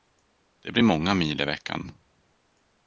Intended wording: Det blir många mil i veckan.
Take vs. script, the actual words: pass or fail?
pass